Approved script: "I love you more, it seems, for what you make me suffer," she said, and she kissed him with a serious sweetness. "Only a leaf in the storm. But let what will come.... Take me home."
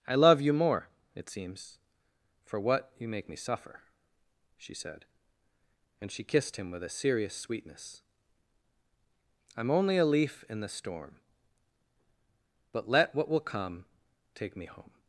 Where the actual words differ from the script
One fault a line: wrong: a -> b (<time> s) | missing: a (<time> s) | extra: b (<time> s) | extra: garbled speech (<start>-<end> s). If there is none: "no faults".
extra: I'm (9.6 s)